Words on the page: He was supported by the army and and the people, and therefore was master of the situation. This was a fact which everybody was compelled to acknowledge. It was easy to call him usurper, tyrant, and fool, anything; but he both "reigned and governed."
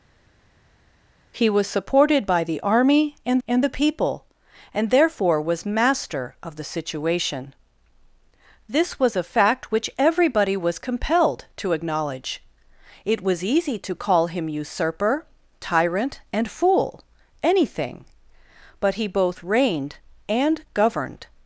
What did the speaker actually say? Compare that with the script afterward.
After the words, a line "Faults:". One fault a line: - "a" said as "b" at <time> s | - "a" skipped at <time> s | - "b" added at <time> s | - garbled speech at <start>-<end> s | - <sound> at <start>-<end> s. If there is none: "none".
He was supported by the army and and the people, and therefore was master of the situation. This was a fact which everybody was compelled to acknowledge. It was easy to call him usurper, tyrant, and fool, anything; but he both "reigned and governed."
Faults:
none